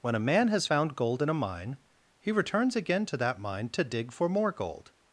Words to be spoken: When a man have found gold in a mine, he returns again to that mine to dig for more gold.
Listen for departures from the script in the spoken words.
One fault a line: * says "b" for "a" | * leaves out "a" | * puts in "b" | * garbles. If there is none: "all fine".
* says "has" for "have"